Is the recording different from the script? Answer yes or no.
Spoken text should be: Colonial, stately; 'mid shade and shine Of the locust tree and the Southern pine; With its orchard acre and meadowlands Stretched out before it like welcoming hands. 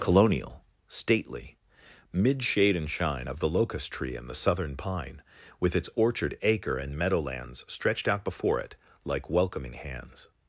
no